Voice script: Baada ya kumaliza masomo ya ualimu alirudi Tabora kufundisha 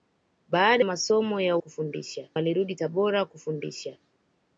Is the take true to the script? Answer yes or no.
no